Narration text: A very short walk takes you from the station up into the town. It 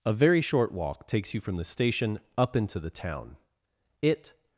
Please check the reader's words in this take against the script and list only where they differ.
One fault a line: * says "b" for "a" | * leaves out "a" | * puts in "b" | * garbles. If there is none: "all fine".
all fine